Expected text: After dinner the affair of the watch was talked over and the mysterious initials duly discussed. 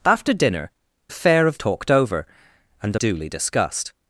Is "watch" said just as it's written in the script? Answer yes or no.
no